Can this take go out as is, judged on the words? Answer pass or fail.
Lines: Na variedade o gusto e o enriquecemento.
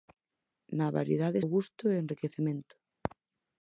pass